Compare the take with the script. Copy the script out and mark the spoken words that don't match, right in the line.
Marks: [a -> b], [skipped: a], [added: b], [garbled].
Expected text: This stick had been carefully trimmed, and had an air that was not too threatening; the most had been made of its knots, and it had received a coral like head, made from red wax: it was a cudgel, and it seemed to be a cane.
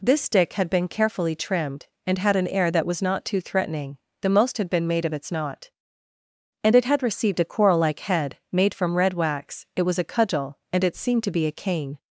This stick had been carefully trimmed, and had an air that was not too threatening; the most had been made of its [knots, -> knot] and it had received a coral like head, made from red wax: it was a cudgel, and it seemed to be a cane.